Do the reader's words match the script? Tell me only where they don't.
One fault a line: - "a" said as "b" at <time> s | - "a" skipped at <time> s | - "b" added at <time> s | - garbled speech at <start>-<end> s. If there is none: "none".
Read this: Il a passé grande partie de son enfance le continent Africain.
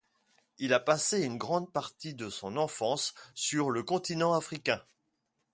- "une" added at 1.2 s
- "sur" added at 3.3 s